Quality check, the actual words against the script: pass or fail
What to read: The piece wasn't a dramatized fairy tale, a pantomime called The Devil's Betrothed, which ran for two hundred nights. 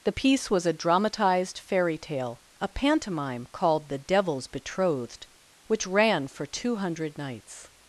fail